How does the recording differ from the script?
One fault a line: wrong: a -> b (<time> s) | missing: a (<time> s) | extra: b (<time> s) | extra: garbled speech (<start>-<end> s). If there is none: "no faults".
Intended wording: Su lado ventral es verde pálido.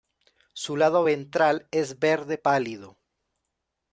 no faults